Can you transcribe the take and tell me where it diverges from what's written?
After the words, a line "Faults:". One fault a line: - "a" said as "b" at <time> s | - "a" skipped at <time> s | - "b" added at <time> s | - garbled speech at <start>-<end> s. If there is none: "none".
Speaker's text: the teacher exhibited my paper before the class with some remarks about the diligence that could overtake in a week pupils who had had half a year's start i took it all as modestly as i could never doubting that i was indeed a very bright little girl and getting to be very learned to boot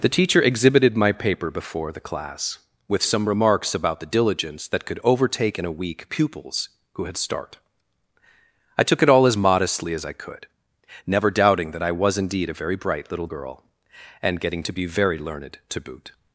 the teacher exhibited my paper before the class with some remarks about the diligence that could overtake in a week pupils who had start i took it all as modestly as i could never doubting that i was indeed a very bright little girl and getting to be very learned to boot
Faults:
- "had half a year's" skipped at 7.2 s